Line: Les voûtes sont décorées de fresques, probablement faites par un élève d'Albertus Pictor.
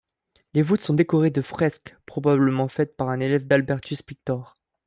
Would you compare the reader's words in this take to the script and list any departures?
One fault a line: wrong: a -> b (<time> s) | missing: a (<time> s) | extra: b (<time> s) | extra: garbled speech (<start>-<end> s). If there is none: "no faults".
no faults